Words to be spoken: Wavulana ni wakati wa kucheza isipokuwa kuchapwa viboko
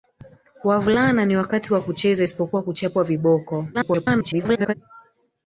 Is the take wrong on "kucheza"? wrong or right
right